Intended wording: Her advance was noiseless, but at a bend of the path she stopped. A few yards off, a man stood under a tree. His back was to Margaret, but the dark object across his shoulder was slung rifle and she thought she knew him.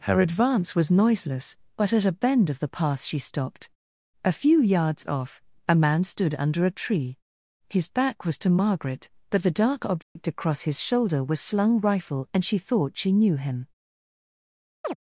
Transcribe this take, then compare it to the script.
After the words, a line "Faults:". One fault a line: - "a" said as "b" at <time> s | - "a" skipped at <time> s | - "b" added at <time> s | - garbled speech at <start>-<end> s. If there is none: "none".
Her advance was noiseless, but at a bend of the path she stopped. A few yards off, a man stood under a tree. His back was to Margaret, but the dark object across his shoulder was slung rifle and she thought she knew him.
Faults:
none